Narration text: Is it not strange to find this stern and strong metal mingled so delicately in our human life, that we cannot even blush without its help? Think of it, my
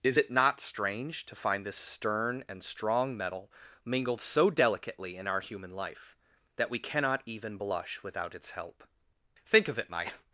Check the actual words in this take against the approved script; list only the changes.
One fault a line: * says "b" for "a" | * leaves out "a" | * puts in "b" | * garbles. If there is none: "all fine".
all fine